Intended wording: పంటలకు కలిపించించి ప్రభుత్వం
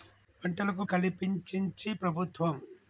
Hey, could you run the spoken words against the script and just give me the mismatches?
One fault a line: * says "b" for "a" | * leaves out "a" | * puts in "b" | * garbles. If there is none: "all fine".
all fine